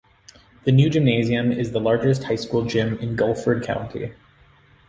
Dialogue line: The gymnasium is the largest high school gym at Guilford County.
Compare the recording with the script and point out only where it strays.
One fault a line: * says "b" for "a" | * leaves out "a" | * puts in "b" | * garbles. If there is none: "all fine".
* puts in "new"
* says "in" for "at"